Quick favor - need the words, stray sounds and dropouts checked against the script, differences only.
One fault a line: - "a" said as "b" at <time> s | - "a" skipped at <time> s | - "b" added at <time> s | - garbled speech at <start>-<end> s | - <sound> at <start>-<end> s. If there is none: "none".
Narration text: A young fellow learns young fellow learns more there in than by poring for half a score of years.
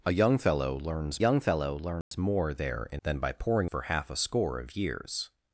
- dropout at 2.0-2.1 s